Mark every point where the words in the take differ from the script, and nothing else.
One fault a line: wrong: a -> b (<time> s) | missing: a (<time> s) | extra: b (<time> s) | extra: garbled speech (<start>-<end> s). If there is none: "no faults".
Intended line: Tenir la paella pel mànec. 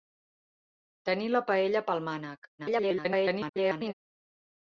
extra: garbled speech (2.6-3.9 s)